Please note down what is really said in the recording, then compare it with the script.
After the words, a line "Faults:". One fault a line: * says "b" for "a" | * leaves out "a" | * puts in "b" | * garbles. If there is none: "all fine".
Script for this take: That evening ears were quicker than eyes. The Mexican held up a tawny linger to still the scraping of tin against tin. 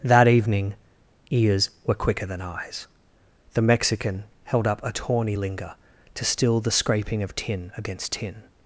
That evening ears were quicker than eyes. The Mexican held up a tawny linger to still the scraping of tin against tin.
Faults:
all fine